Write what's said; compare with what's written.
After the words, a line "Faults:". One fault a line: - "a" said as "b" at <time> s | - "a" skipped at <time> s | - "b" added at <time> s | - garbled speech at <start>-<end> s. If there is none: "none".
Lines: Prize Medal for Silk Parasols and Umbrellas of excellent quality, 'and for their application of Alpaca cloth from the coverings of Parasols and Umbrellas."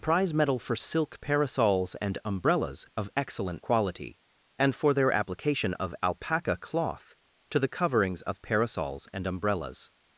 Prize Medal for Silk Parasols and Umbrellas of excellent quality, 'and for their application of Alpaca cloth to the coverings of Parasols and Umbrellas."
Faults:
- "from" said as "to" at 7.5 s